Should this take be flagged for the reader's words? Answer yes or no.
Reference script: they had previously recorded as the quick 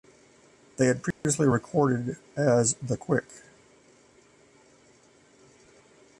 no